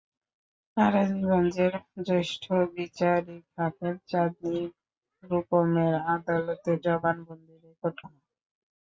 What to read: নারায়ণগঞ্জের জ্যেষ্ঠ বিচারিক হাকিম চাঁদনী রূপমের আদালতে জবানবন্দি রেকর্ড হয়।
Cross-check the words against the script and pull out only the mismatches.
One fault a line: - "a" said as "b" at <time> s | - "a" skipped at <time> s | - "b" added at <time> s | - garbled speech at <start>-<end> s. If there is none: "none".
none